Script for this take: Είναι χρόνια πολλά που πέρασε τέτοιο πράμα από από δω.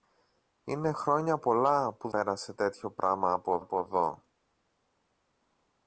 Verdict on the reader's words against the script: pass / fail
pass